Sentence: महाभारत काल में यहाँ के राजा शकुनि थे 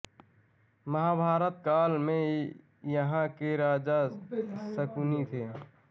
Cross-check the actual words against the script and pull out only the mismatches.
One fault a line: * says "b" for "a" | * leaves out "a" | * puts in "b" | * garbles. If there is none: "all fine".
all fine